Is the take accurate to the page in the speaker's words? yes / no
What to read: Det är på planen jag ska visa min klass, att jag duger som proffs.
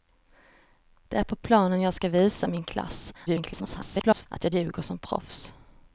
no